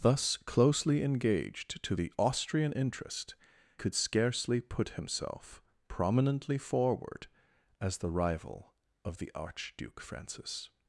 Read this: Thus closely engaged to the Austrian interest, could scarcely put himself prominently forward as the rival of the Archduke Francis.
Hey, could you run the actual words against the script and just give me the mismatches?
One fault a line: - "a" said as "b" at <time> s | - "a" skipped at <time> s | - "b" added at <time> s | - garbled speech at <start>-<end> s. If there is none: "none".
none